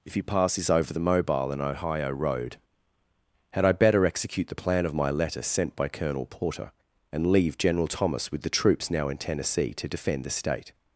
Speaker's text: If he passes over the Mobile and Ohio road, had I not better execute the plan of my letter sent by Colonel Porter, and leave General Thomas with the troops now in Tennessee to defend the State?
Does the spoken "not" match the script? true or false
false